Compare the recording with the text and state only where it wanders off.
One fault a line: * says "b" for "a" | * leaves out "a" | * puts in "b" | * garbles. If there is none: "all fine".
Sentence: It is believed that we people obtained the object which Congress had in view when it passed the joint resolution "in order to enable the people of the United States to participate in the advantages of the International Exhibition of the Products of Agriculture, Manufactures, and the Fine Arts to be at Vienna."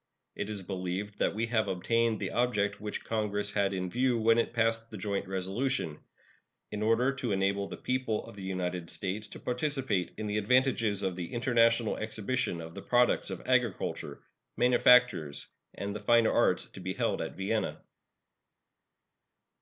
* says "have" for "people"
* puts in "held"